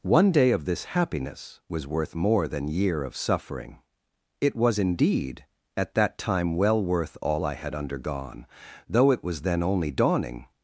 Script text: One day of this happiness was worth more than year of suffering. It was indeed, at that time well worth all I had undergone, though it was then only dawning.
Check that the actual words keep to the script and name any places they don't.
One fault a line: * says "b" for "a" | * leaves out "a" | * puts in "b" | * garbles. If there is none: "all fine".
all fine